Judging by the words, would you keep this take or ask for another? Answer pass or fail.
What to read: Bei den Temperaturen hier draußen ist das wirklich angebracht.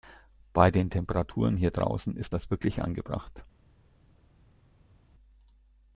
pass